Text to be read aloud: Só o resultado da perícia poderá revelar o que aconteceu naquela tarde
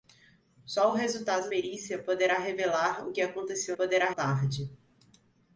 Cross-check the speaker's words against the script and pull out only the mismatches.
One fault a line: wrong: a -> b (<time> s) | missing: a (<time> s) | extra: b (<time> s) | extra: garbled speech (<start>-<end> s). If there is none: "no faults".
missing: da (1.5 s)
wrong: naquela -> poderá (3.7 s)